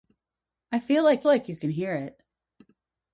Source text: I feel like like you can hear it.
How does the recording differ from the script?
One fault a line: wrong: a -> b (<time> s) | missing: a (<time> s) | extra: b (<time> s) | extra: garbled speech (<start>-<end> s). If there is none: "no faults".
no faults